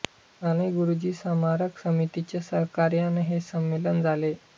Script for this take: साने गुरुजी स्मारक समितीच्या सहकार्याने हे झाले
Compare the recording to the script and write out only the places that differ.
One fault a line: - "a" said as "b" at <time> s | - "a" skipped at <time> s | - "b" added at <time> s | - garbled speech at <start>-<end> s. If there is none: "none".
- "संमेलन" added at 3.4 s